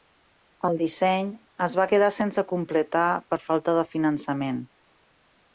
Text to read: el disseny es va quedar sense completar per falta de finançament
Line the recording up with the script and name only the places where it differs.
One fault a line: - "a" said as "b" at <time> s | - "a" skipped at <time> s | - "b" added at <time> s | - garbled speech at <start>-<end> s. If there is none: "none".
none